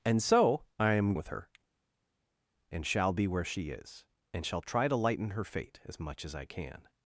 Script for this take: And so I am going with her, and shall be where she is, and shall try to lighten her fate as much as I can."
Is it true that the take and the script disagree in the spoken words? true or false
true